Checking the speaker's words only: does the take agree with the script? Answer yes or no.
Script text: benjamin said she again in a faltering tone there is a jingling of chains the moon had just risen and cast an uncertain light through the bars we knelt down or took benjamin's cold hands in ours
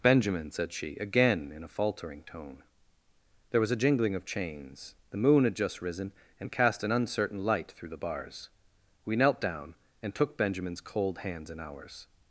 no